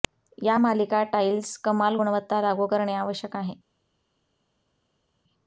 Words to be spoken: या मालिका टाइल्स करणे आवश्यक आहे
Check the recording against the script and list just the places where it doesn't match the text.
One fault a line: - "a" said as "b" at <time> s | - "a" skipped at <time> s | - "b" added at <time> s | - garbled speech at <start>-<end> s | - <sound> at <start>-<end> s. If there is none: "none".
- "कमाल गुणवत्ता लागू" added at 1.6 s